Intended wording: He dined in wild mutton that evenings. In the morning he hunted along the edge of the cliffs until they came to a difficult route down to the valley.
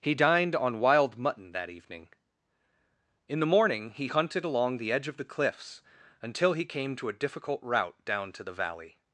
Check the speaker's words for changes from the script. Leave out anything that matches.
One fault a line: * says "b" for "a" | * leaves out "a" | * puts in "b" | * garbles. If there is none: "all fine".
* says "on" for "in"
* says "evening" for "evenings"
* says "he" for "they"